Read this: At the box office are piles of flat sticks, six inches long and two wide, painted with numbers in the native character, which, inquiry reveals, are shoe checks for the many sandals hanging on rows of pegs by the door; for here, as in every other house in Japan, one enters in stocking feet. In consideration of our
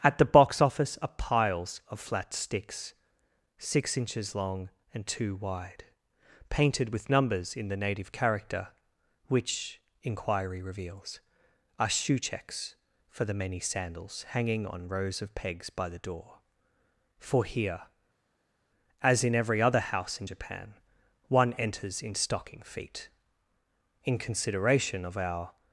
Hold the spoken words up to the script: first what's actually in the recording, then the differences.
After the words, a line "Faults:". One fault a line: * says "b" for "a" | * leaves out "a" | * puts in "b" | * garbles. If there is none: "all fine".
At the box office are piles of flat sticks, six inches long and two wide, painted with numbers in the native character, which, inquiry reveals, are shoe checks for the many sandals hanging on rows of pegs by the door; for here, as in every other house in Japan, one enters in stocking feet. In consideration of our
Faults:
all fine